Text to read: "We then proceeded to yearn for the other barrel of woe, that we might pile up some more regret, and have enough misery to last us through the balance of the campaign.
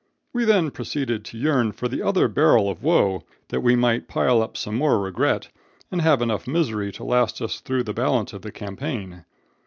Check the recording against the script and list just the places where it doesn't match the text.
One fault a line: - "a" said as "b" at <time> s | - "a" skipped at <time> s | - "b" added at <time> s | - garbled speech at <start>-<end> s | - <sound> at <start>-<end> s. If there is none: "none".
none